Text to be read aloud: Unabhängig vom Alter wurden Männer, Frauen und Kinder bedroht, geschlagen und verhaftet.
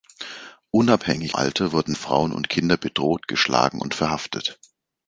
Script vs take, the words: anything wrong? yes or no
yes